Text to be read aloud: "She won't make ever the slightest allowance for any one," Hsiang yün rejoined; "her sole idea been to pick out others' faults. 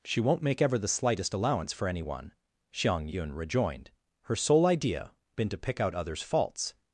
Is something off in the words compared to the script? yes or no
no